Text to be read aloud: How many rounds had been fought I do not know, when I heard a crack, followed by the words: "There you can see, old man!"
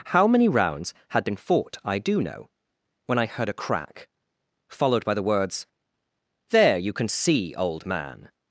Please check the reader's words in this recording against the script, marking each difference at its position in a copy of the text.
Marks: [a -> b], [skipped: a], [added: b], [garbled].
How many rounds had been fought I do [skipped: not] know, when I heard a crack, followed by the words: "There you can see, old man!"